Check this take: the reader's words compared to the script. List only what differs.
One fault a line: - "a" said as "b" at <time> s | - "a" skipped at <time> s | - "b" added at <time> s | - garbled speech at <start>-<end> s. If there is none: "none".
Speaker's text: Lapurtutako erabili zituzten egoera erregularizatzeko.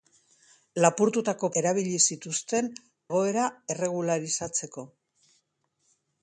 none